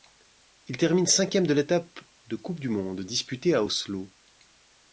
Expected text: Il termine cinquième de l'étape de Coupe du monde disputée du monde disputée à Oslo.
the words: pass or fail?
fail